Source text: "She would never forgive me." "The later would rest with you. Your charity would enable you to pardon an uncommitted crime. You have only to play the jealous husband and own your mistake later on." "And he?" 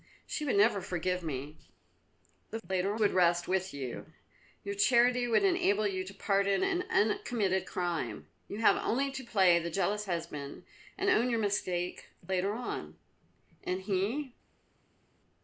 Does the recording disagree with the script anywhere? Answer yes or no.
no